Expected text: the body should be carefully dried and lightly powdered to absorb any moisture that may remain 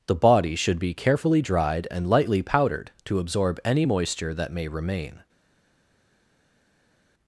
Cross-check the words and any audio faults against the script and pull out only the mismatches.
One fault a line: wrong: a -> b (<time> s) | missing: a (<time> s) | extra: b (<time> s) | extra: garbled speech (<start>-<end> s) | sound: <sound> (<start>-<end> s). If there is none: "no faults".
no faults